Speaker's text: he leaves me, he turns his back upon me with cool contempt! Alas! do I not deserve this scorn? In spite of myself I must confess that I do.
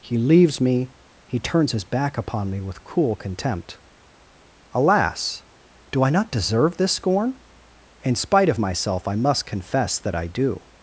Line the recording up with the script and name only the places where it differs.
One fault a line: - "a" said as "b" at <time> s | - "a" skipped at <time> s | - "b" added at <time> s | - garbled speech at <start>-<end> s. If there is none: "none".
none